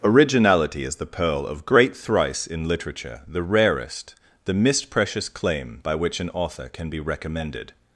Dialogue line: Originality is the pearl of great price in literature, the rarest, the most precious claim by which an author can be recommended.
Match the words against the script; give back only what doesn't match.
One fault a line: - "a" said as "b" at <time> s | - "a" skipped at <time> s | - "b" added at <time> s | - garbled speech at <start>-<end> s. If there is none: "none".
- "price" said as "thrice" at 1.9 s
- "most" said as "mist" at 4.5 s